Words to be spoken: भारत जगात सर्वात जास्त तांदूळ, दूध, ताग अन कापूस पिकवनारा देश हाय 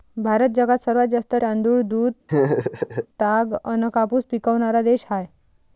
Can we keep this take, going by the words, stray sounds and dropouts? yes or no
no